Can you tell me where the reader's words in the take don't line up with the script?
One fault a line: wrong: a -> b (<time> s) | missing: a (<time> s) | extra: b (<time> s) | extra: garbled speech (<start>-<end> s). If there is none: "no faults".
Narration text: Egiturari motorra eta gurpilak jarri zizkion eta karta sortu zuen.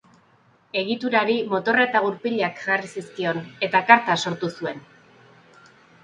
no faults